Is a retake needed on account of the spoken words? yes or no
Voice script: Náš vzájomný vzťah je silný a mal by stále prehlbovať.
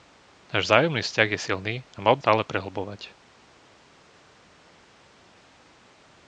no